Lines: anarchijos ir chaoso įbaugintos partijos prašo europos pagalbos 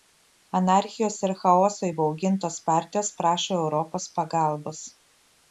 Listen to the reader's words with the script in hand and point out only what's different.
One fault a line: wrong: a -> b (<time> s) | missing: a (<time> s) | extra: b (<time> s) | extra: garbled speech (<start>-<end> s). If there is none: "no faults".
no faults